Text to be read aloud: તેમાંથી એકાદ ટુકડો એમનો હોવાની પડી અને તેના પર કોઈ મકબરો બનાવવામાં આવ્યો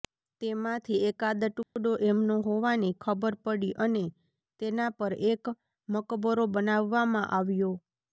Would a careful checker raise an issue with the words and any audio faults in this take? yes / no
yes